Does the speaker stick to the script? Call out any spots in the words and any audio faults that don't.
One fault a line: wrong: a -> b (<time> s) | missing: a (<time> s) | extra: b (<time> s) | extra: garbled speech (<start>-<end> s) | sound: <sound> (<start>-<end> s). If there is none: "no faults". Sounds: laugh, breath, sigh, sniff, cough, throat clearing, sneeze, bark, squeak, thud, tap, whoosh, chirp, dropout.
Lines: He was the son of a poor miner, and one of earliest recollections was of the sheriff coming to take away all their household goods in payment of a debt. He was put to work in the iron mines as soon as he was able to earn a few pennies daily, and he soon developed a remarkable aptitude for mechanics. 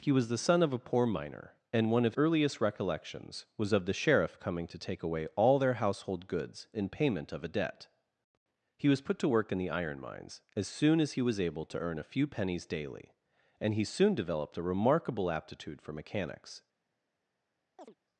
sound: chirp (17.8-17.9 s)